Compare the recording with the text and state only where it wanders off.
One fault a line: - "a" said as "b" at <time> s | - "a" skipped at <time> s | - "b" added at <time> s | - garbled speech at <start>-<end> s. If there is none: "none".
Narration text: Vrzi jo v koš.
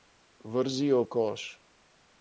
- "v" skipped at 1.0 s